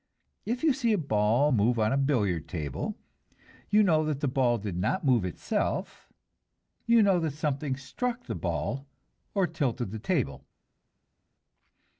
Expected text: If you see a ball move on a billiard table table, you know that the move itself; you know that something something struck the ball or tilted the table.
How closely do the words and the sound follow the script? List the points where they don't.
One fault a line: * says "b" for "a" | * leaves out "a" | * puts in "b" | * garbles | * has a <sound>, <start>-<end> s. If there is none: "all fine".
* leaves out "table"
* puts in "ball did not"
* leaves out "something"